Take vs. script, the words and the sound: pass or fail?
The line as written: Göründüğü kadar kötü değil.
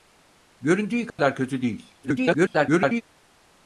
fail